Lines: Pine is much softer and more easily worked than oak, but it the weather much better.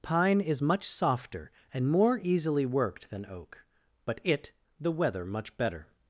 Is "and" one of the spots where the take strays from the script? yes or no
no